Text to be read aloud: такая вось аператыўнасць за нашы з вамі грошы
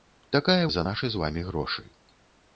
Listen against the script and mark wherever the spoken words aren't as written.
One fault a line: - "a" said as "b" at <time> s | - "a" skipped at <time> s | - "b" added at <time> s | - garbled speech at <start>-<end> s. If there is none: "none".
- "вось аператыўнасць" skipped at 0.6 s